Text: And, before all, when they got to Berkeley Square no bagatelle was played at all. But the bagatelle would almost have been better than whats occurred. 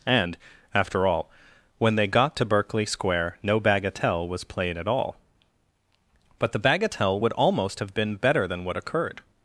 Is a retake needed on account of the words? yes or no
yes